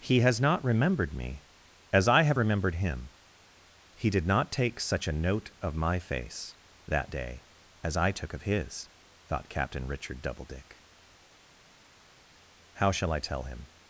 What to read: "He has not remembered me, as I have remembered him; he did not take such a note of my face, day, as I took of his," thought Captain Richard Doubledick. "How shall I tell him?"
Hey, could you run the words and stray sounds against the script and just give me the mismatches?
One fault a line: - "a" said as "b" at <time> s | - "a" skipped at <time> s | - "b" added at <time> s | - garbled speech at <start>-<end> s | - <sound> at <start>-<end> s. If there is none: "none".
- "that" added at 6.9 s